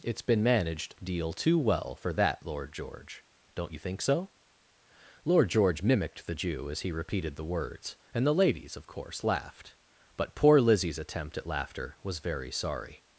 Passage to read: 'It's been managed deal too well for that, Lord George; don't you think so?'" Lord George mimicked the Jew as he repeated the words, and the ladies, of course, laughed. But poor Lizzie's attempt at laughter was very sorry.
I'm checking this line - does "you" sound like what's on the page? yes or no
yes